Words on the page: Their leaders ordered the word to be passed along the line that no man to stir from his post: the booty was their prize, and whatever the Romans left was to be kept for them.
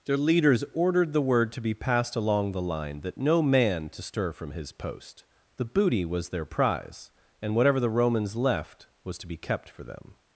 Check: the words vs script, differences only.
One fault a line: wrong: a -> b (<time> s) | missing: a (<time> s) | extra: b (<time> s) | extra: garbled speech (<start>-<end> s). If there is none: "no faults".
no faults